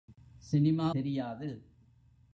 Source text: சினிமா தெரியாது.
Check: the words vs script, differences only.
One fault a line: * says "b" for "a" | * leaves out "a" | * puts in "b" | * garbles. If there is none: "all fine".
all fine